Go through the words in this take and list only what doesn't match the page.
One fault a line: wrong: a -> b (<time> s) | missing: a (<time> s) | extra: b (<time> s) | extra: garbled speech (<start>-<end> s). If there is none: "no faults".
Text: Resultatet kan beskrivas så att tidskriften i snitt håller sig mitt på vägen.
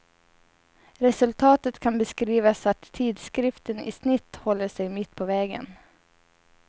no faults